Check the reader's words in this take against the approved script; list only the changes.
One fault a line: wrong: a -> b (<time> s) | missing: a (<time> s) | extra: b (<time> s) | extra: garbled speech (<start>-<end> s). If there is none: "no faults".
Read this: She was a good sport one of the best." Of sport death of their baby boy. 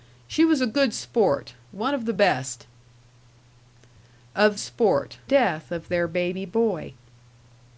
no faults